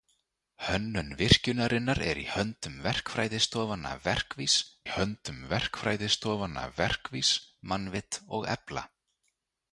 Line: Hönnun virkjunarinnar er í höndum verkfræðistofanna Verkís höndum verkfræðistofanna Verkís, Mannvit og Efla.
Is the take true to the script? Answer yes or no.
yes